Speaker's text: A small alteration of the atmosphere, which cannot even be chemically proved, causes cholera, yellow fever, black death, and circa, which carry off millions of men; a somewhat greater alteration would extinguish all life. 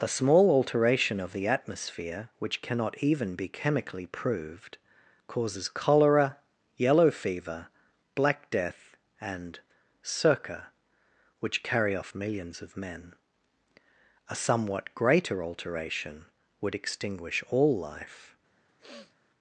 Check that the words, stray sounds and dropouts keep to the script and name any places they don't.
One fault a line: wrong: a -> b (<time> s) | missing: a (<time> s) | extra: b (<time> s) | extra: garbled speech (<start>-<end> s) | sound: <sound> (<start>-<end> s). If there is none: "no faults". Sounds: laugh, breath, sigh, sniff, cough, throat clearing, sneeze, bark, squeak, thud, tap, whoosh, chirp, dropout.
sound: sniff (18.7-19.2 s)